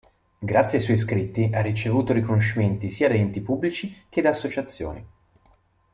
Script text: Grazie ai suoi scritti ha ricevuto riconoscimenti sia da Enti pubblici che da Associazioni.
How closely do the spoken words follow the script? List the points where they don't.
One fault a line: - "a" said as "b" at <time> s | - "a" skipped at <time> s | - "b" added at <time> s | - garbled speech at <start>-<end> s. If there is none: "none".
none